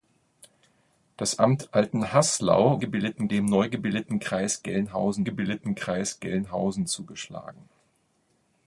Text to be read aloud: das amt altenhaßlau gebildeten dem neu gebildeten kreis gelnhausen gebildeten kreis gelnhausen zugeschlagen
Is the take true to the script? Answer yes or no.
yes